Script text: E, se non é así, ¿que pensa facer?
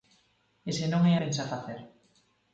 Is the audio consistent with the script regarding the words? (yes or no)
no